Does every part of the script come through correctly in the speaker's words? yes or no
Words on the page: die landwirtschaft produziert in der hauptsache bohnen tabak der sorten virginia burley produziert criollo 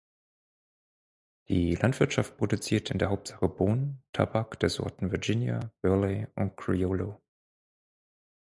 no